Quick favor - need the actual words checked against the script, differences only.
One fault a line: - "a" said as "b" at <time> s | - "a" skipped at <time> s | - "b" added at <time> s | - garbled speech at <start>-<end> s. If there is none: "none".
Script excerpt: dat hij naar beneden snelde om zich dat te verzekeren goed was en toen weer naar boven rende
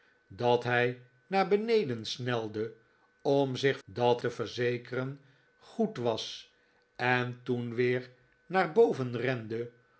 none